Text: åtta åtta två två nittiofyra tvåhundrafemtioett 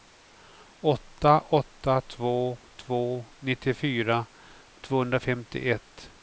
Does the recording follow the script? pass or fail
pass